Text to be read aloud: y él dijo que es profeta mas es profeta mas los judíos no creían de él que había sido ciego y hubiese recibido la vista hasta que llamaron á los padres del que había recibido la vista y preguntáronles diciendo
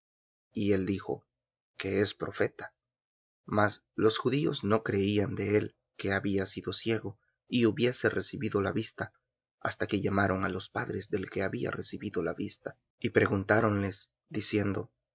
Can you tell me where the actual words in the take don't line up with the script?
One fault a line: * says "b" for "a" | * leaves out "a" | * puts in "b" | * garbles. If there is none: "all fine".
* leaves out "es profeta mas"